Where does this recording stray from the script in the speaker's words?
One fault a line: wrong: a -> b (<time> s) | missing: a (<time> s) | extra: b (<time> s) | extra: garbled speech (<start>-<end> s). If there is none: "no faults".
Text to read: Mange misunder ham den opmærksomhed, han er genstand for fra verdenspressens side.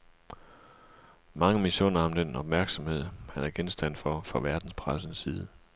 no faults